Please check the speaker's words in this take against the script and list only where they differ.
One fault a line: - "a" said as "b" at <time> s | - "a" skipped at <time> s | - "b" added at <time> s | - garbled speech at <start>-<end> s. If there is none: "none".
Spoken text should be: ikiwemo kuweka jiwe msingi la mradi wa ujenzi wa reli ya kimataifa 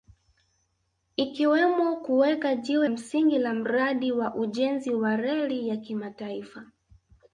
none